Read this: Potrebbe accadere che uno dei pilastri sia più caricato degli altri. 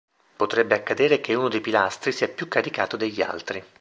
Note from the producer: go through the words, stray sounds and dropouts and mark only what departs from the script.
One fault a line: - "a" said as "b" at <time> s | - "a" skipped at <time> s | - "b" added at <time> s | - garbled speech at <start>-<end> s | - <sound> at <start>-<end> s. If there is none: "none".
none